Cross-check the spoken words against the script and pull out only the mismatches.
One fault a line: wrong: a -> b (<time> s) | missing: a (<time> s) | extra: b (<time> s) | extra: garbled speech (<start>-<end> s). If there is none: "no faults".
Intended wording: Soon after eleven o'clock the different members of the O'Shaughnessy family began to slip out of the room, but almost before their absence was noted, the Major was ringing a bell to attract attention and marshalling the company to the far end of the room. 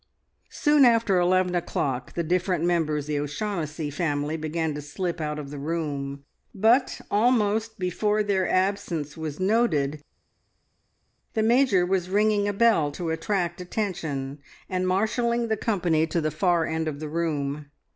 missing: of (3.1 s)